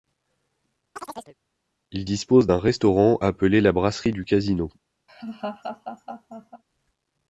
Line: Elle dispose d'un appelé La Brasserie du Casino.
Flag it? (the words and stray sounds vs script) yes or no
yes